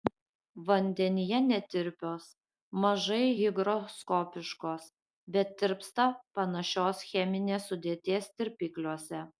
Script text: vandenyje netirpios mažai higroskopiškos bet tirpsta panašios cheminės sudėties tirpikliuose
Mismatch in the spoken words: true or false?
false